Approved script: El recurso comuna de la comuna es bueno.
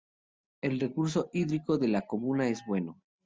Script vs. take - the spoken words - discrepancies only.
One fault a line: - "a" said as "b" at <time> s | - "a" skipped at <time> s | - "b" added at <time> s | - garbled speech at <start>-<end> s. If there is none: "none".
- "comuna" said as "hídrico" at 1.3 s